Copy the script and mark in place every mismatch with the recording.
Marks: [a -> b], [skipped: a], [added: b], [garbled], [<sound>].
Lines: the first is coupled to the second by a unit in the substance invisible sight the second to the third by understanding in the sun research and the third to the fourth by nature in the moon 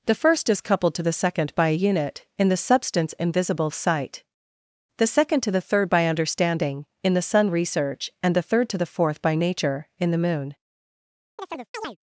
the first is coupled to the second by a unit in the substance invisible sight the second to the third by understanding in the sun research and the third to the fourth by nature in the moon [chirp]